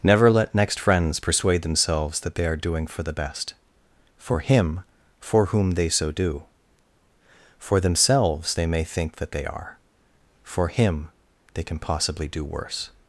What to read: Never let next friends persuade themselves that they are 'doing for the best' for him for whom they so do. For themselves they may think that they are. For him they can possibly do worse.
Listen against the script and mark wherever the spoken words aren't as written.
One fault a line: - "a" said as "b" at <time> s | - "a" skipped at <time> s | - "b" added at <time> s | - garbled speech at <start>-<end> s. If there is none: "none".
none